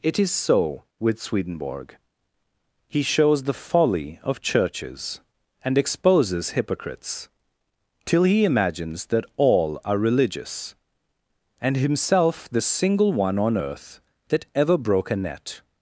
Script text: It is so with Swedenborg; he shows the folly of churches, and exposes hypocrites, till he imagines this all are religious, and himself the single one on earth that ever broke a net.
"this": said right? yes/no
no